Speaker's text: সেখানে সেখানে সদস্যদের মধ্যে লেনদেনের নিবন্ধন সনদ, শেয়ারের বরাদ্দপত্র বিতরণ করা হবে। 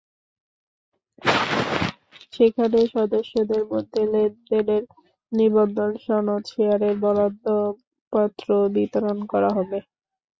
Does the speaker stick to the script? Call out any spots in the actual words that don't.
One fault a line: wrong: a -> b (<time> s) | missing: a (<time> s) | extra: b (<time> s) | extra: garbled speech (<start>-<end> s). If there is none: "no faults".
missing: সেখানে (2.8 s)